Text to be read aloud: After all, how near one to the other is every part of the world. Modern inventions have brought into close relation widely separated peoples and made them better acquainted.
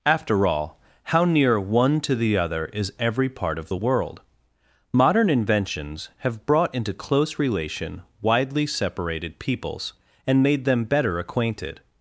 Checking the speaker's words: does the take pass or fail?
pass